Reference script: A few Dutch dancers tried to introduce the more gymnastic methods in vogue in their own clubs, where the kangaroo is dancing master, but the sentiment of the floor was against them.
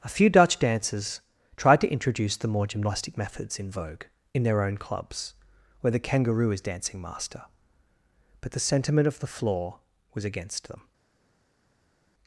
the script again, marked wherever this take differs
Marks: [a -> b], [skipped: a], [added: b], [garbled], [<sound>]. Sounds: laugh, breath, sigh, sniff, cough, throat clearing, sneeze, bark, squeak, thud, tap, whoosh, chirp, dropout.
A few Dutch dancers tried to introduce the more gymnastic methods in vogue in their own clubs, where the kangaroo is dancing master, but the sentiment of the floor was against them.